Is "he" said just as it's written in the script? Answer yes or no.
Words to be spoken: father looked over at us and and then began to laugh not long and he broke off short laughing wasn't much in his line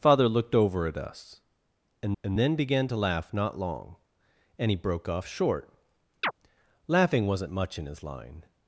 yes